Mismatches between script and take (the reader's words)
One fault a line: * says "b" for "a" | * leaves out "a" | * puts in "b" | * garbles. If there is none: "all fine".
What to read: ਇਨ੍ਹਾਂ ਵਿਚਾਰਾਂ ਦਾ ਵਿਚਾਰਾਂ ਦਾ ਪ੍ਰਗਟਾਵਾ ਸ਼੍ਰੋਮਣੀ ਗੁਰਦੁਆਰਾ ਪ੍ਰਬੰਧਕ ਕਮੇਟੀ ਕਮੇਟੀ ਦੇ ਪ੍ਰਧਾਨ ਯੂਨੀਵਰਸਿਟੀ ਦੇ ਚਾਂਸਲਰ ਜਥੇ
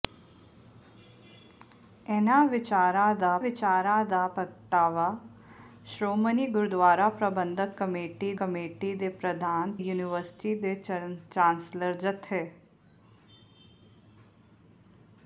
all fine